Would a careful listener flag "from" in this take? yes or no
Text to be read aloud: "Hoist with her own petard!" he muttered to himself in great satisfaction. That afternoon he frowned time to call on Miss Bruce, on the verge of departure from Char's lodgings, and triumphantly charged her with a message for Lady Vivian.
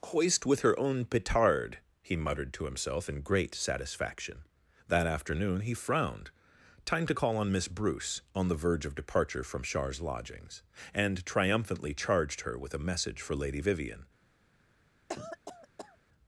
no